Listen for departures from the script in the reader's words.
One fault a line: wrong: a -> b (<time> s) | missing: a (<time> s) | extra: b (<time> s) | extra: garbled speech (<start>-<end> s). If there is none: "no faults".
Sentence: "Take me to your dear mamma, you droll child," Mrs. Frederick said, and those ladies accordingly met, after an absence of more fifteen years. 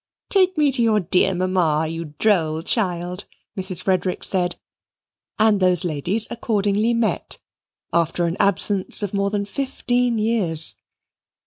extra: than (9.3 s)